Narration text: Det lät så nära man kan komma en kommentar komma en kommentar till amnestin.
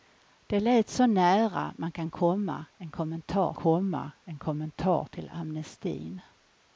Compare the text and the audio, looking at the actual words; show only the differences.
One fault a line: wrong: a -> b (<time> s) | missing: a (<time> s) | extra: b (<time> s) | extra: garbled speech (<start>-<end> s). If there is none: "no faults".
no faults